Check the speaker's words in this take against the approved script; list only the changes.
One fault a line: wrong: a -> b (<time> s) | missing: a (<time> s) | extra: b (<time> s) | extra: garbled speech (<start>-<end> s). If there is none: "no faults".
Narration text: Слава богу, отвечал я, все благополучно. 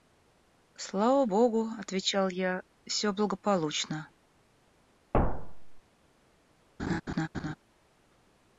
no faults